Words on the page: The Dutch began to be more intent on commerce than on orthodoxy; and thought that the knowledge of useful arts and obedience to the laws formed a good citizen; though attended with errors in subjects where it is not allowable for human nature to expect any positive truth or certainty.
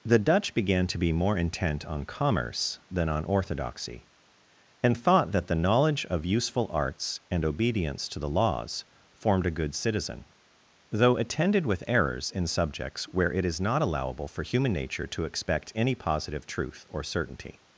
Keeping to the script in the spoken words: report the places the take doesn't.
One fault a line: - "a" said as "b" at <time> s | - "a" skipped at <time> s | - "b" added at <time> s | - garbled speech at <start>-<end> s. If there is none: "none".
none